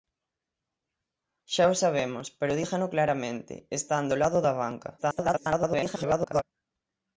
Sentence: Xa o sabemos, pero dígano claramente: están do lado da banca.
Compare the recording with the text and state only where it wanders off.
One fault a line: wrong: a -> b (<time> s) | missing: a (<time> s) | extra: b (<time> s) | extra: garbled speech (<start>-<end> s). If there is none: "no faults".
extra: garbled speech (5.0-6.4 s)